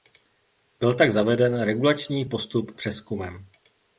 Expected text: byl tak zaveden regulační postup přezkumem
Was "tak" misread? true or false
false